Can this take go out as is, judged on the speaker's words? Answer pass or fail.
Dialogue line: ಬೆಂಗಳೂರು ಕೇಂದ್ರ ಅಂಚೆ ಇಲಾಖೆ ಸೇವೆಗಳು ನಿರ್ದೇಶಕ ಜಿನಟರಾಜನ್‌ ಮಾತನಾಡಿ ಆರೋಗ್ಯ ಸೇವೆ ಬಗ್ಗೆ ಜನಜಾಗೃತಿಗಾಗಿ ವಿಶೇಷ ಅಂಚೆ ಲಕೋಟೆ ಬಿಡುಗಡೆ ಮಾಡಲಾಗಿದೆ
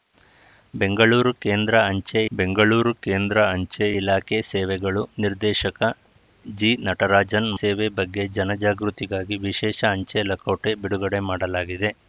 fail